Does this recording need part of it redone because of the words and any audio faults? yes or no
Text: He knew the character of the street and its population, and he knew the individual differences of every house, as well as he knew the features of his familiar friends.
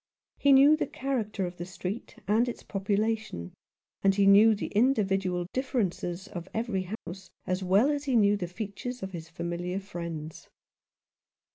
yes